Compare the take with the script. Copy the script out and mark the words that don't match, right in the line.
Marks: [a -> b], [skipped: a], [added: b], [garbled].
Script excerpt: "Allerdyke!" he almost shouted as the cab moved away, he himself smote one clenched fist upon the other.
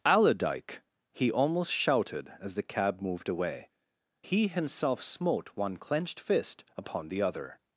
"Allerdyke!" he almost shouted as the cab moved away, he himself smote one clenched fist upon the other.